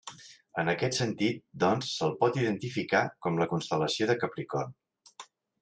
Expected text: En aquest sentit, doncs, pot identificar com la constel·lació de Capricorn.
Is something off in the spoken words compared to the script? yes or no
yes